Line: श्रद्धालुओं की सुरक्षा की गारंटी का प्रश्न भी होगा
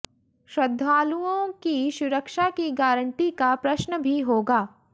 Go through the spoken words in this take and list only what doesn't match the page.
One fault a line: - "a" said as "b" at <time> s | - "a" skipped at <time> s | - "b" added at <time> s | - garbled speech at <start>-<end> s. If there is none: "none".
none